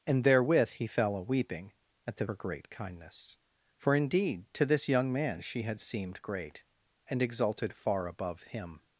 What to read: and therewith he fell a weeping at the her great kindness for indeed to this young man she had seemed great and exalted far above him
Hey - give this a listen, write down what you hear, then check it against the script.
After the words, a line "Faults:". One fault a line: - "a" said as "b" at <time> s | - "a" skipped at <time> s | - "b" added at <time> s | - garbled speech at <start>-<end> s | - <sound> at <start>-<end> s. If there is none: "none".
and therewith he fell a weeping at the her great kindness for indeed to this young man she had seemed great and exalted far above him
Faults:
none